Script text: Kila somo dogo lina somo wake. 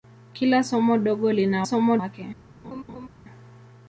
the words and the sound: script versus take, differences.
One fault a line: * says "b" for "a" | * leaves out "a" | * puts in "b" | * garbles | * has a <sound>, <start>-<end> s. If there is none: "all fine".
* has a laugh, 2.6-3.1 s